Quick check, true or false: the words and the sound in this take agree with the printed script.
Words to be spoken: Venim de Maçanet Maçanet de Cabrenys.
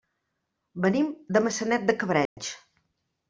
false